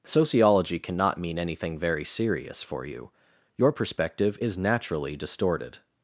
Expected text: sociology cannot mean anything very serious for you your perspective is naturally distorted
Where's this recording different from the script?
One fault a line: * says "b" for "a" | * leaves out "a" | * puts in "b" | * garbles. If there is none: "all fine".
all fine